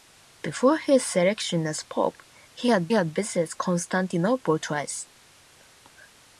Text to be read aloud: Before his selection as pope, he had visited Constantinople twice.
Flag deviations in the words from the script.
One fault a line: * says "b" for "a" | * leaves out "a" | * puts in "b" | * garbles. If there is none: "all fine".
* puts in "had"